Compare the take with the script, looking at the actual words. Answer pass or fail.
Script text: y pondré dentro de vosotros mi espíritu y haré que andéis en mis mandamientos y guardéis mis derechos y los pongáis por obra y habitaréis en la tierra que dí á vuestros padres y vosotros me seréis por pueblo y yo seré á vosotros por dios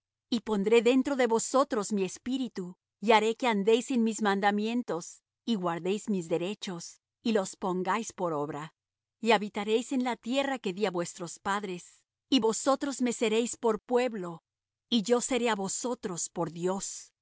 pass